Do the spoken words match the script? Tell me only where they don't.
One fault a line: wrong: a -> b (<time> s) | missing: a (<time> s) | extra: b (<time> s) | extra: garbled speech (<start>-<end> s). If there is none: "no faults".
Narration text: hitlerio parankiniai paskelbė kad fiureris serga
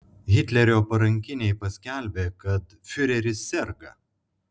no faults